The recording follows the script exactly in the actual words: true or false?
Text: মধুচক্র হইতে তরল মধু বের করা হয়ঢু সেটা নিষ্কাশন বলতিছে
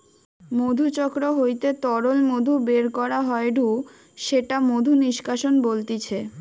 false